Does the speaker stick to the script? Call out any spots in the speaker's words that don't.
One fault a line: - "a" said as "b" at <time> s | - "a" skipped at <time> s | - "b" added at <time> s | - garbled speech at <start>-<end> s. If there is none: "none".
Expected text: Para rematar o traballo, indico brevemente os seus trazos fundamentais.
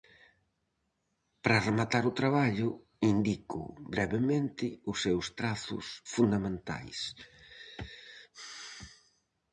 none